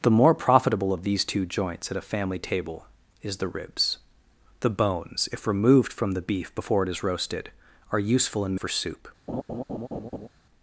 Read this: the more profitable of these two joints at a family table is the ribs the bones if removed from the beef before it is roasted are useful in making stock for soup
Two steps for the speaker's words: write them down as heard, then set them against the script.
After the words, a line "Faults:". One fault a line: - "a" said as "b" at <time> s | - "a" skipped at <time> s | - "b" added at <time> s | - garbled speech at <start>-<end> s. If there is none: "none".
the more profitable of these two joints at a family table is the ribs the bones if removed from the beef before it is roasted are useful in for soup
Faults:
- "making stock" skipped at 8.6 s